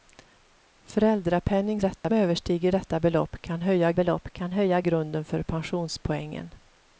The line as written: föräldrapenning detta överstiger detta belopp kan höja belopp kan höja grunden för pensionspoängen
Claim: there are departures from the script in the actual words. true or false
false